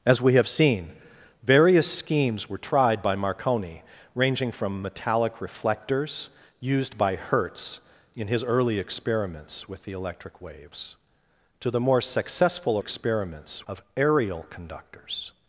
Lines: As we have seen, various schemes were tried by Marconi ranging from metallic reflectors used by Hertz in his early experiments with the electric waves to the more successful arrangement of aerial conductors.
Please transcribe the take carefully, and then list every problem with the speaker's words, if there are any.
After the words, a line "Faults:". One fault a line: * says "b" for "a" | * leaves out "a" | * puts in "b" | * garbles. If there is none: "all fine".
As we have seen, various schemes were tried by Marconi ranging from metallic reflectors used by Hertz in his early experiments with the electric waves to the more successful experiments of aerial conductors.
Faults:
* says "experiments" for "arrangement"